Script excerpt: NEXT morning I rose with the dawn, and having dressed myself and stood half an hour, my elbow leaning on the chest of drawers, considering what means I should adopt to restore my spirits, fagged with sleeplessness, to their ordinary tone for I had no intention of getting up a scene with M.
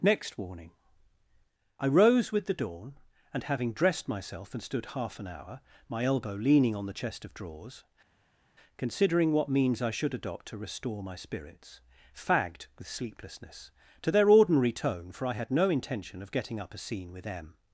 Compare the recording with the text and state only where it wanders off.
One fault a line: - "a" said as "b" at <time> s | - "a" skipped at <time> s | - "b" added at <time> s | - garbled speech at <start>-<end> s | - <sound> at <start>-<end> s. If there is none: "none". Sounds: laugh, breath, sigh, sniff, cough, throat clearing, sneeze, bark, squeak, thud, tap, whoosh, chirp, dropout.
- "morning" said as "warning" at 0.3 s